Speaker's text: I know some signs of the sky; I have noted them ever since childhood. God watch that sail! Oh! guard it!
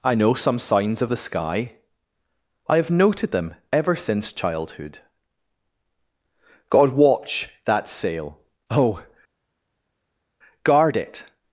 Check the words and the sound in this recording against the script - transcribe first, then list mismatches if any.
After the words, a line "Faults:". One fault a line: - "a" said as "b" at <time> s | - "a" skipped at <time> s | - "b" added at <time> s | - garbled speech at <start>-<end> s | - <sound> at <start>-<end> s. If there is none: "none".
I know some signs of the sky; I have noted them ever since childhood. God watch that sail! Oh! guard it!
Faults:
none